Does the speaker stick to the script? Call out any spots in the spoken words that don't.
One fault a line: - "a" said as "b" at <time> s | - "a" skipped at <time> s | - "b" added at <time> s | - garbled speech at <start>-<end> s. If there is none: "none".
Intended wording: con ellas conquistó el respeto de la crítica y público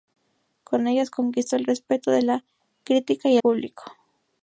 none